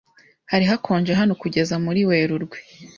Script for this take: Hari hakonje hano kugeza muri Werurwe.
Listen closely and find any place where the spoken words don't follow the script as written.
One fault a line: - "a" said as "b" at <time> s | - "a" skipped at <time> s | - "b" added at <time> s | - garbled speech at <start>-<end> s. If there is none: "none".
none